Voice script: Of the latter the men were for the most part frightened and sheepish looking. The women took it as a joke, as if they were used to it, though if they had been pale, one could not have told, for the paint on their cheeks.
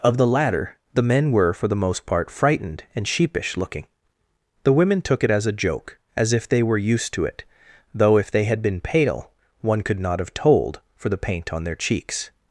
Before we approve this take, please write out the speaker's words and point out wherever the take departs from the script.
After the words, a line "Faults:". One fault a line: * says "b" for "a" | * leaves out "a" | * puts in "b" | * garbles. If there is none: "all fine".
Of the latter the men were for the most part frightened and sheepish looking. The women took it as a joke, as if they were used to it, though if they had been pale, one could not have told, for the paint on their cheeks.
Faults:
all fine